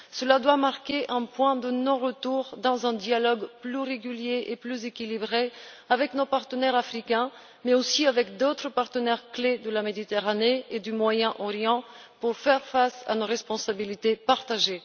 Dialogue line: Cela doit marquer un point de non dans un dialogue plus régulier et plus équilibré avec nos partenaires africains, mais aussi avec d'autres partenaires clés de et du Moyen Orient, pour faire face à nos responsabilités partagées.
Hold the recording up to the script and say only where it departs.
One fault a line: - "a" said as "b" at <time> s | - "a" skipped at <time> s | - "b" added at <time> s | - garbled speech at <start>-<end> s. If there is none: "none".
- "retour" added at 2.0 s
- "la Méditerranée" added at 9.7 s